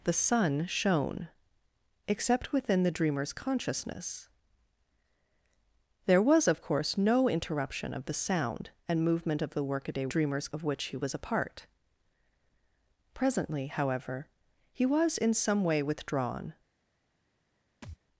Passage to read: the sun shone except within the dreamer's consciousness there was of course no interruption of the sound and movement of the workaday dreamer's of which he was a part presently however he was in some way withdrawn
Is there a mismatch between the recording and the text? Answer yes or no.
no